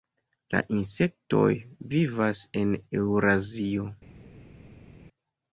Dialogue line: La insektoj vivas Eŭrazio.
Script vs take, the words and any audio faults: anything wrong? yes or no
yes